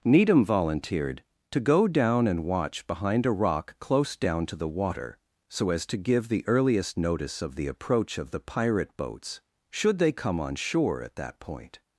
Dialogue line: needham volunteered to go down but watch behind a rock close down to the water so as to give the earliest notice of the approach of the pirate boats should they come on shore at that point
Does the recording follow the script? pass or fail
fail